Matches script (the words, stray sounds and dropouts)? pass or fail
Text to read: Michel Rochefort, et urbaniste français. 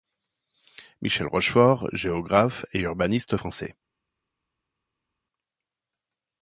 fail